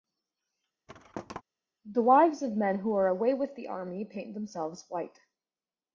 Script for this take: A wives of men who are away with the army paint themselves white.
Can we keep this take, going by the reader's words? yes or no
no